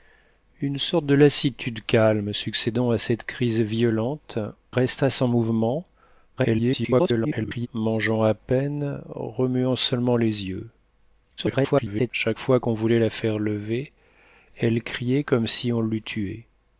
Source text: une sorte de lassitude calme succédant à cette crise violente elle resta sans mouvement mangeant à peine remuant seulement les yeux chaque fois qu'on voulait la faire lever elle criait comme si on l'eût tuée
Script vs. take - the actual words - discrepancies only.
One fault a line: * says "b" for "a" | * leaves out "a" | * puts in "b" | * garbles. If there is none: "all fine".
* leaves out "elle"
* garbles
* garbles